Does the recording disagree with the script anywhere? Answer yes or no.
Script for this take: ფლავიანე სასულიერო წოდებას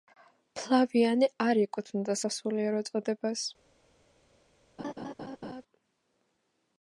yes